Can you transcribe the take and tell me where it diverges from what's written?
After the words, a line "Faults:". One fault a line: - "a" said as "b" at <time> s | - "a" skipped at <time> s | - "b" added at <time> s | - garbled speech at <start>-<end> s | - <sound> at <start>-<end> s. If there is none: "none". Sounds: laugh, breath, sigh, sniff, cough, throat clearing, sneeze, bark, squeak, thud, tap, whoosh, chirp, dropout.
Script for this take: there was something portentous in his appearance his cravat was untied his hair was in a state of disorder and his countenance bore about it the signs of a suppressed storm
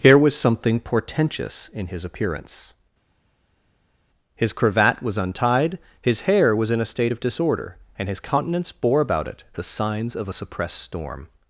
here was something portentous in his appearance his cravat was untied his hair was in a state of disorder and his countenance bore about it the signs of a suppressed storm
Faults:
- "there" said as "here" at 0.0 s